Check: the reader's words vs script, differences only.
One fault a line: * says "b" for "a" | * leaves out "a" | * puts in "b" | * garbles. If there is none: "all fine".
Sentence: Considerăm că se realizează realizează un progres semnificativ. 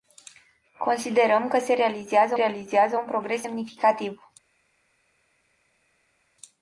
all fine